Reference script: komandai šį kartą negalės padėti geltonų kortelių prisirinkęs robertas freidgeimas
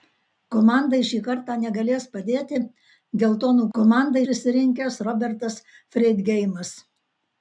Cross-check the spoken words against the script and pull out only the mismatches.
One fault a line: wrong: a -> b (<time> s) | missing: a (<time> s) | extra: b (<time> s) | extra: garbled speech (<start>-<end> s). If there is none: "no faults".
wrong: kortelių -> komandai (3.8 s)